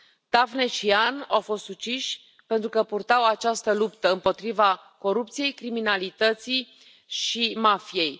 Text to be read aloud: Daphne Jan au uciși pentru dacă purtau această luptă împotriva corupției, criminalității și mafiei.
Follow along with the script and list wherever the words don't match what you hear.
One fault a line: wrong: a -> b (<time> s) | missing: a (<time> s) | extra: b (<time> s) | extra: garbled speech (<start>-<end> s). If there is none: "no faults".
extra: și (0.7 s)
extra: fost (1.4 s)
wrong: dacă -> că (2.7 s)